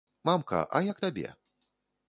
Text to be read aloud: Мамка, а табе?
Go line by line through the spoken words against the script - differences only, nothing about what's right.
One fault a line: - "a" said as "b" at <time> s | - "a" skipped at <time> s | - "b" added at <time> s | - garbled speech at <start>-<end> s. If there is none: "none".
- "як" added at 0.9 s